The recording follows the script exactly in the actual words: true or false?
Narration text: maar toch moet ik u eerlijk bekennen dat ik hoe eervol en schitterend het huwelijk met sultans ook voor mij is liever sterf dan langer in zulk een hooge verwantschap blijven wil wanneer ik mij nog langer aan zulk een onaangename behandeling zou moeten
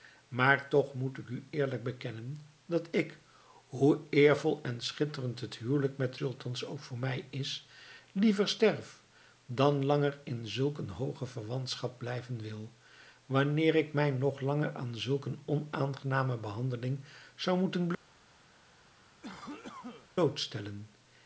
true